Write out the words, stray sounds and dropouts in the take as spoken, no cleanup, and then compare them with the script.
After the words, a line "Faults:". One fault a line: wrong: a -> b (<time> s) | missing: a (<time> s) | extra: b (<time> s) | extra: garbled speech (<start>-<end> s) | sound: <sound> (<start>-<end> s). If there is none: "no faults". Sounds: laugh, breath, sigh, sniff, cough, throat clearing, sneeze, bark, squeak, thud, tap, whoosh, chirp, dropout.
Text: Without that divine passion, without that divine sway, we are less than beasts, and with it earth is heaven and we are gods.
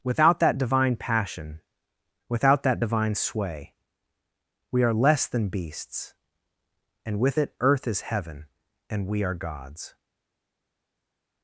Without that divine passion, without that divine sway, we are less than beasts, and with it earth is heaven and we are gods.
Faults:
no faults